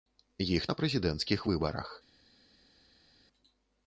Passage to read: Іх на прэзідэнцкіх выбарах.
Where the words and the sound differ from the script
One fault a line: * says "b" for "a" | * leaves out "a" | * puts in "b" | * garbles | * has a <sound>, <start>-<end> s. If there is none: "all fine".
all fine